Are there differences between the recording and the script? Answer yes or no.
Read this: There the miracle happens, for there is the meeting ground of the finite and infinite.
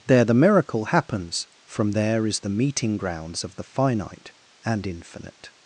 yes